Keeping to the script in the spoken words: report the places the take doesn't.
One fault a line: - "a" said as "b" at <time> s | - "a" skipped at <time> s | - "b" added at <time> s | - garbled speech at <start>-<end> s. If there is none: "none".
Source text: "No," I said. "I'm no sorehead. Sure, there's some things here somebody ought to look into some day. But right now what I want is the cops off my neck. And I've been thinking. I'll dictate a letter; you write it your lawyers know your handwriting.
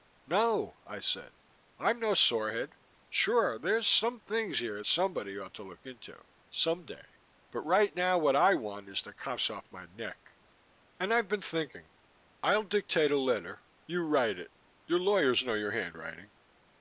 none